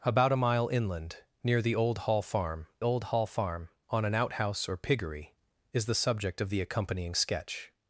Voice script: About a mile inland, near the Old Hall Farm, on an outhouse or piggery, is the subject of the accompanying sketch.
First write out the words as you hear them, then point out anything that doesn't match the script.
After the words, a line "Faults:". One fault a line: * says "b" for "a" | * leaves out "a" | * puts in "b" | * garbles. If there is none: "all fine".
About a mile inland, near the Old Hall Farm Old Hall Farm, on an outhouse or piggery, is the subject of the accompanying sketch.
Faults:
* puts in "Old Hall Farm"